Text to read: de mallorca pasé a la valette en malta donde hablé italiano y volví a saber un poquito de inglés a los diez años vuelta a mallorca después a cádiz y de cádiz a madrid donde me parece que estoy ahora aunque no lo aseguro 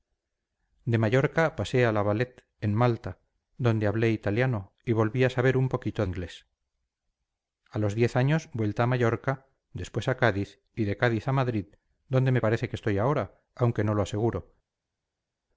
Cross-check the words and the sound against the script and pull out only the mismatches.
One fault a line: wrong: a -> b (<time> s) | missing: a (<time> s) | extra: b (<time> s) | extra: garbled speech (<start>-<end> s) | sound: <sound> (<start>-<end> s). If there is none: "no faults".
missing: de (6.0 s)